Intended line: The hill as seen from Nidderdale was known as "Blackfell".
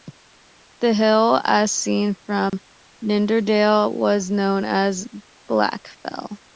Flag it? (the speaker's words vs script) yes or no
no